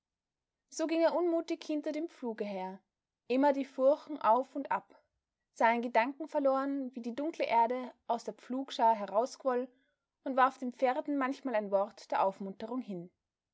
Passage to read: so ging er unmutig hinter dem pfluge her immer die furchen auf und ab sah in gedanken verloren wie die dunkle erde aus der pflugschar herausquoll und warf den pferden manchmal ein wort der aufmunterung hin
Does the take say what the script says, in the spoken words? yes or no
yes